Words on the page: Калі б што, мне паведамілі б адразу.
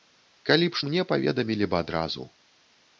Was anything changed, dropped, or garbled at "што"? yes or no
yes